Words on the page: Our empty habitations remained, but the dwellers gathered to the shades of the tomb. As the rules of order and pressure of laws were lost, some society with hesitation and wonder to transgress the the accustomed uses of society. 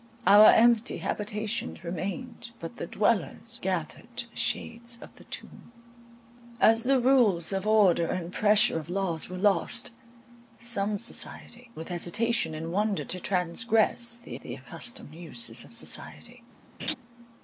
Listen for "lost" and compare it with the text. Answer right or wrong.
right